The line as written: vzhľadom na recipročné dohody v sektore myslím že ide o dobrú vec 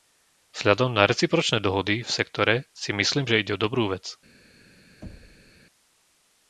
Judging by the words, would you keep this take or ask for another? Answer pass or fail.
fail